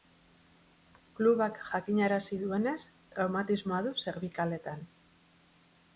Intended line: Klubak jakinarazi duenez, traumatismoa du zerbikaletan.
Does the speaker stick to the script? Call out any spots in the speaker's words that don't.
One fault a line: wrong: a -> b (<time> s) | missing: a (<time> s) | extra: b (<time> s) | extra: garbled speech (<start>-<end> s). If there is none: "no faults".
no faults